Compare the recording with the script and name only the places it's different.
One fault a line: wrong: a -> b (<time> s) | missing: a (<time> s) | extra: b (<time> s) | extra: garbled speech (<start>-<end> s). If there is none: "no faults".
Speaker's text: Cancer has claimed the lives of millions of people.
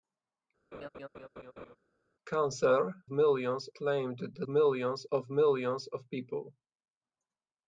wrong: has -> millions (3.1 s)
wrong: lives -> millions (4.5 s)